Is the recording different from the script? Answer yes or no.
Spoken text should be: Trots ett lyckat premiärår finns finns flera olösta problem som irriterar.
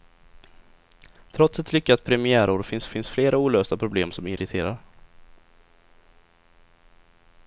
no